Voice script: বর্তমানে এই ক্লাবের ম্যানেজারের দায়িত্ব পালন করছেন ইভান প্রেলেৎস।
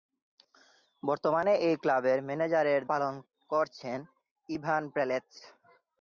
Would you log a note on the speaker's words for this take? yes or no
yes